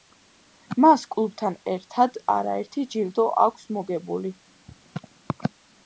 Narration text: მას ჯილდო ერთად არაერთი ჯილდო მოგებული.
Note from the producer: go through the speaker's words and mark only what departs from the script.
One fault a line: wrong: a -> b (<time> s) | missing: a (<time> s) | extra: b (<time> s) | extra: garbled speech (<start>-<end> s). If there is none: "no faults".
wrong: ჯილდო -> კლუბთან (1.1 s)
extra: აქვს (3.5 s)